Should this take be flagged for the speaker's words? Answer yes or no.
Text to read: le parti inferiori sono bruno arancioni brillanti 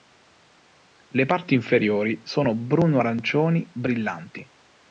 no